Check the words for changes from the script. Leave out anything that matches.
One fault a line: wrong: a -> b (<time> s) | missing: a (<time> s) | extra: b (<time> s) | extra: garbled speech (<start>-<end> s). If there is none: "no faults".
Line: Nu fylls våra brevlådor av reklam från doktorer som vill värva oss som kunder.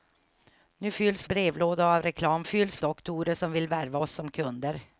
missing: våra (1.3 s)
wrong: från -> fylls (2.4 s)